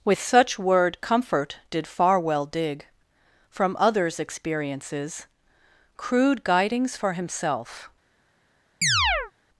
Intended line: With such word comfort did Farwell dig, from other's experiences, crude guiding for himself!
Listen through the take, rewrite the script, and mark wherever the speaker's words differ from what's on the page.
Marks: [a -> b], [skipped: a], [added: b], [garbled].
With such word comfort did Farwell dig, from other's experiences, crude [guiding -> guidings] for himself!